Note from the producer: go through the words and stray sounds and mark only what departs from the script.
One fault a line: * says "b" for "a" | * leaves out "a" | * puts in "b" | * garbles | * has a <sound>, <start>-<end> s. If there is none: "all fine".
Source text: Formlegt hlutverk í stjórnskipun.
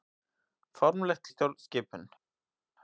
* leaves out "hlutverk"